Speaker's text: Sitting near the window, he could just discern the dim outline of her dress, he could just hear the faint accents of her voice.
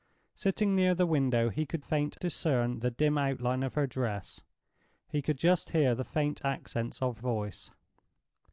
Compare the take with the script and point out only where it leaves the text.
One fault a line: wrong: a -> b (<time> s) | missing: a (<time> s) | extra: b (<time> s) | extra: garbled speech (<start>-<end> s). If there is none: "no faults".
wrong: just -> faint (1.8 s)
missing: her (7.2 s)